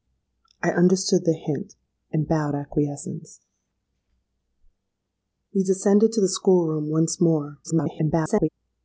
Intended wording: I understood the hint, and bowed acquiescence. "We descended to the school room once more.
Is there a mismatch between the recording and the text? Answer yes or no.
yes